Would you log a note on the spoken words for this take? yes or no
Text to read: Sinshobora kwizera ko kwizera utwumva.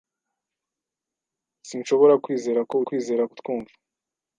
no